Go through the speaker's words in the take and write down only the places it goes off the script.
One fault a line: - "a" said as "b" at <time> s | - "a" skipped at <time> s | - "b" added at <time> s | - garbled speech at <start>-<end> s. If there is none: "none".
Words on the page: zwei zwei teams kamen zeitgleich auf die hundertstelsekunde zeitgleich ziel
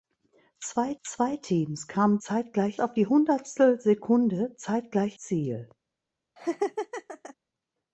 none